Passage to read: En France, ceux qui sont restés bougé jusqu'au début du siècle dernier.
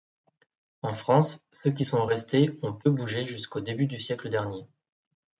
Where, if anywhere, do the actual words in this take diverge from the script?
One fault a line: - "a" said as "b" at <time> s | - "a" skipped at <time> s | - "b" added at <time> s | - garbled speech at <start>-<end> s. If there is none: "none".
- "ont peu" added at 2.6 s